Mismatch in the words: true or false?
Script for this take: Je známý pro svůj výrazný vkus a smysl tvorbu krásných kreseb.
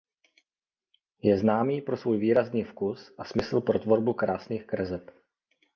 true